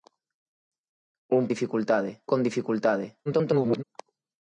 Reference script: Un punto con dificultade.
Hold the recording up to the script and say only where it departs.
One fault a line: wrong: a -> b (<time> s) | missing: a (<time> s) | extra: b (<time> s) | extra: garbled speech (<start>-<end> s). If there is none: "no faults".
wrong: punto -> dificultade (1.5 s)
extra: garbled speech (3.3-3.8 s)